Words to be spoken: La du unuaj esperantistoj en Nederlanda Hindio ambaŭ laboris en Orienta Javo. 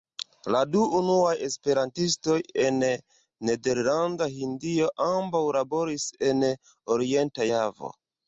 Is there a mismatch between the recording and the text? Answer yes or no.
no